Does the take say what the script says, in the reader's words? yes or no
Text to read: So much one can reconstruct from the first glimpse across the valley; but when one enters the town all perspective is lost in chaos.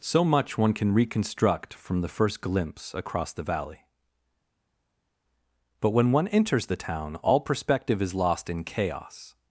yes